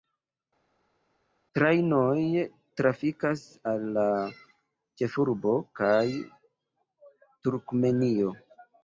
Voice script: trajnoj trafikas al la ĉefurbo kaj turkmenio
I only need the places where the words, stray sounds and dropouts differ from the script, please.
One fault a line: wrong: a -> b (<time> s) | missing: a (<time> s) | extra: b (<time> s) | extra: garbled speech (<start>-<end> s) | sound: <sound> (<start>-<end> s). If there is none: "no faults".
no faults